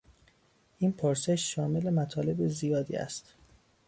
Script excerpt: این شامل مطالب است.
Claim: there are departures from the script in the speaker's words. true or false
true